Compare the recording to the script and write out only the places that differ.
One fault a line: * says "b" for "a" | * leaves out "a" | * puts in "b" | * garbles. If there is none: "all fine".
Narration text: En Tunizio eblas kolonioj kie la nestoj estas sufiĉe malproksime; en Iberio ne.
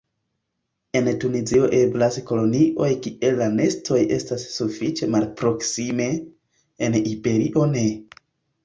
all fine